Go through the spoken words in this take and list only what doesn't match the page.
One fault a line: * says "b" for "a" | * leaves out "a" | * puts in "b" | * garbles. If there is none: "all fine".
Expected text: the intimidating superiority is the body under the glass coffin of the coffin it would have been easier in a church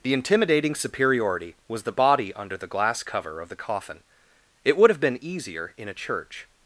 * says "was" for "is"
* says "cover" for "coffin"